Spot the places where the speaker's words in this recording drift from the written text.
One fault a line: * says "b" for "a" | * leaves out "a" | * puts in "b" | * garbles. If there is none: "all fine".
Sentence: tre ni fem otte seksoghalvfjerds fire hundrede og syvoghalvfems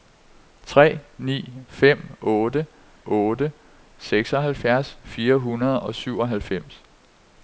* puts in "otte"